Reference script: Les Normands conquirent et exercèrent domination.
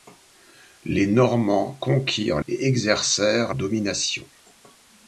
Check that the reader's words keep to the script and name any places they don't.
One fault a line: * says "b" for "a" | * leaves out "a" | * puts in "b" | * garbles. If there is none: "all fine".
all fine